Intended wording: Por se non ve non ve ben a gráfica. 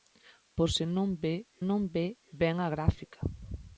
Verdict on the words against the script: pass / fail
pass